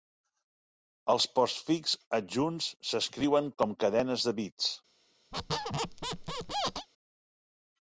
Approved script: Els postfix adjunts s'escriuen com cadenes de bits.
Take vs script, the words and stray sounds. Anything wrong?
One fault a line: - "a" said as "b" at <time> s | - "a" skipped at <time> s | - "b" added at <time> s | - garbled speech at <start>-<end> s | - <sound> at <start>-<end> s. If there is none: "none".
- squeak at 5.3-6.9 s